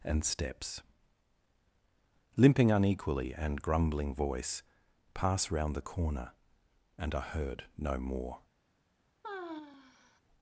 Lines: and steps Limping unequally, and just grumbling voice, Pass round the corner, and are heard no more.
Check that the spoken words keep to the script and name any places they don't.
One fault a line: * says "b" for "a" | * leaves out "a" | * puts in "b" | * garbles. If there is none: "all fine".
* leaves out "just"